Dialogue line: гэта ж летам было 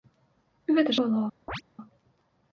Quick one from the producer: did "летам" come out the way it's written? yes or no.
no